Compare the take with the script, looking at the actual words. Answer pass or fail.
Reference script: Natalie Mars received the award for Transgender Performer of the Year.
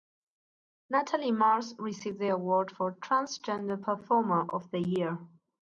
pass